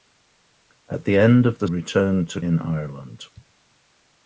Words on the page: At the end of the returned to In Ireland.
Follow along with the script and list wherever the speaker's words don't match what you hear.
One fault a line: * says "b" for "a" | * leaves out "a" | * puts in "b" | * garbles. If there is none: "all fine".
all fine